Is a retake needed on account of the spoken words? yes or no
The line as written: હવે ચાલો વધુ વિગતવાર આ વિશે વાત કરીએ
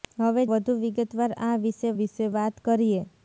yes